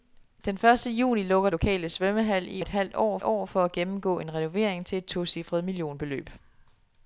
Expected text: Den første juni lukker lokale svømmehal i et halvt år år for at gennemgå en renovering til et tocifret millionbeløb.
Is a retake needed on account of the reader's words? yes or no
no